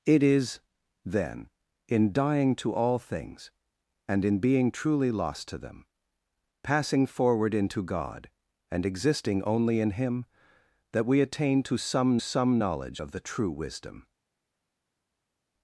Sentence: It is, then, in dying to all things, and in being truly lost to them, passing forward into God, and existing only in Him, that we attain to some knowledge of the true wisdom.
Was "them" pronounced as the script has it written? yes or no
yes